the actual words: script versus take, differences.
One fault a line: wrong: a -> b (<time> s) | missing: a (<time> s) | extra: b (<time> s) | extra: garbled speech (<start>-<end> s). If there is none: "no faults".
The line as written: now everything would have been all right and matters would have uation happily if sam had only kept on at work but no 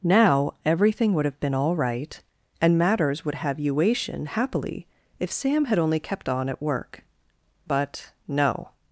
no faults